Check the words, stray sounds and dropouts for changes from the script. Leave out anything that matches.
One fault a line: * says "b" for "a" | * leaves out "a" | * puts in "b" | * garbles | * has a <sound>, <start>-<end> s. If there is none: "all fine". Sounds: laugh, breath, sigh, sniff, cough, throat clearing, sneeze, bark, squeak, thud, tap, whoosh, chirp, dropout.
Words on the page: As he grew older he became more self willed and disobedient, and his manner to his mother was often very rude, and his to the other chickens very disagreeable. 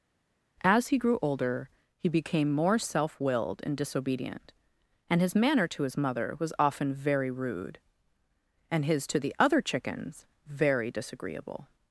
all fine